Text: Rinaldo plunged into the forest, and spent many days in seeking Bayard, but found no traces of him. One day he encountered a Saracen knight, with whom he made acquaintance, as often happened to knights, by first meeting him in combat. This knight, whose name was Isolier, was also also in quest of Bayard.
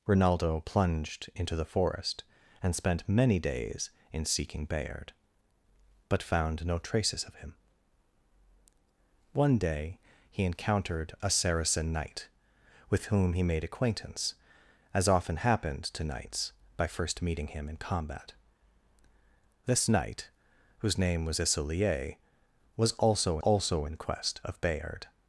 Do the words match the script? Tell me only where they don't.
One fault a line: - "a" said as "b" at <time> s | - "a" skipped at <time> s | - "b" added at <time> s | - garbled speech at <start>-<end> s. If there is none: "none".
none